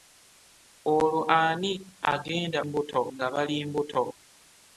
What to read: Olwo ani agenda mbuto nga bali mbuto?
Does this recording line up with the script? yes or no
yes